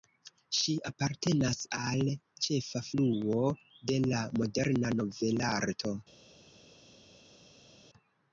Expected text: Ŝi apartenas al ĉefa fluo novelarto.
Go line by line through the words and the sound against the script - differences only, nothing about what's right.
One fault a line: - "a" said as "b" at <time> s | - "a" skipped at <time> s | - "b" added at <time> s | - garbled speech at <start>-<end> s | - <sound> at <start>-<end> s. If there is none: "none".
- "de la moderna" added at 3.9 s